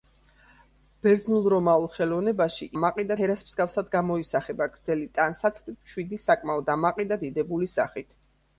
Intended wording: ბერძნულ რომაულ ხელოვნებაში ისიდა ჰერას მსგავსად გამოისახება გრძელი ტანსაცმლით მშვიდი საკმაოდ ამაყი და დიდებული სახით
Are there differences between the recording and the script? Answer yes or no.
yes